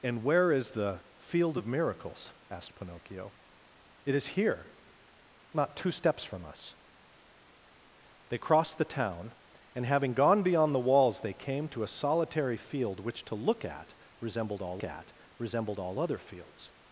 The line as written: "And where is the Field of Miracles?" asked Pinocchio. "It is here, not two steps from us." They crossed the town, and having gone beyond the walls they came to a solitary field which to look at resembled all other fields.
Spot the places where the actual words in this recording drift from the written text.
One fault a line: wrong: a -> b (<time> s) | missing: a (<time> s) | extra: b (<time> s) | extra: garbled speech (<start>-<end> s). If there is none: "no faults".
extra: at resembled all (14.8 s)